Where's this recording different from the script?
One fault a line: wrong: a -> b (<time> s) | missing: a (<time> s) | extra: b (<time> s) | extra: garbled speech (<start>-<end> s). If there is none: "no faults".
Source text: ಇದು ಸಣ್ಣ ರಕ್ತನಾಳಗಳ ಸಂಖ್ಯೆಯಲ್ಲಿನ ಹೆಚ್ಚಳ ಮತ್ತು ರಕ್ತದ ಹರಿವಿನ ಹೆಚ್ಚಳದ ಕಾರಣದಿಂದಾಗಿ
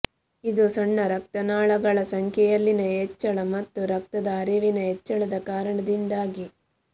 no faults